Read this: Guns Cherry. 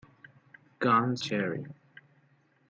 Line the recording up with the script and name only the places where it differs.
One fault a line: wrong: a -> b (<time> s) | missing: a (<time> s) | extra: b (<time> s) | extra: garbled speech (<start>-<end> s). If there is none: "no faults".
no faults